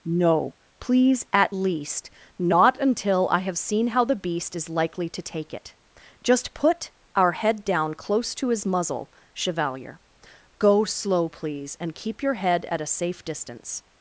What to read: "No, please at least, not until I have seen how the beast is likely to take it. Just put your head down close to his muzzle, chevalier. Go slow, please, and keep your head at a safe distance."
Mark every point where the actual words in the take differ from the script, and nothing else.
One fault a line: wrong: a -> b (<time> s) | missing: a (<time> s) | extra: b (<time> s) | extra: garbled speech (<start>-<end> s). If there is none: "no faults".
wrong: your -> our (7.1 s)